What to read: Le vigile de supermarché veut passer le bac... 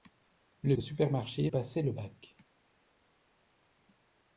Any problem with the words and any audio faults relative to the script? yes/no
yes